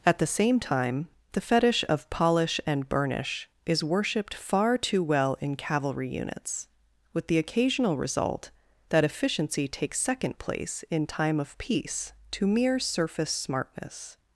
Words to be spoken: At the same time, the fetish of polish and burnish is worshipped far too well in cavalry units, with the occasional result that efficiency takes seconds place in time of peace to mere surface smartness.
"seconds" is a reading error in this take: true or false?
true